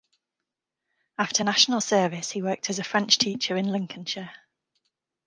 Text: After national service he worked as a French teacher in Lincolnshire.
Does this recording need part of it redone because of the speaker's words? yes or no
no